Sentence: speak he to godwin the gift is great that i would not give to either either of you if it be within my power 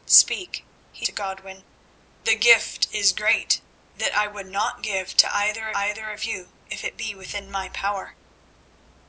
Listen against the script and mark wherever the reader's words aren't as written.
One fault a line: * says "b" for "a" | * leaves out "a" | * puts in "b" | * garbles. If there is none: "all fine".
all fine